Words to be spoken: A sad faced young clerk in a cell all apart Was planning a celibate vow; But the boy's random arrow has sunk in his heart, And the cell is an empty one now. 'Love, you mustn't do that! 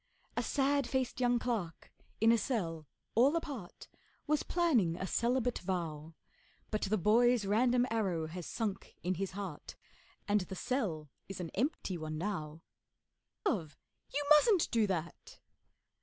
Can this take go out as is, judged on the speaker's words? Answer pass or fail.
pass